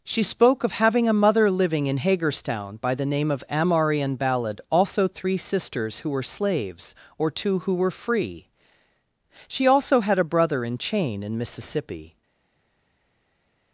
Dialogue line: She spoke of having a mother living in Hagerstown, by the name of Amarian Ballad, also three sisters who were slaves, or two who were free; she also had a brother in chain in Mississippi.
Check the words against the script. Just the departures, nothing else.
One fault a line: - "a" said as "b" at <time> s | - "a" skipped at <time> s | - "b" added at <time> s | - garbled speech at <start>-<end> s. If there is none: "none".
none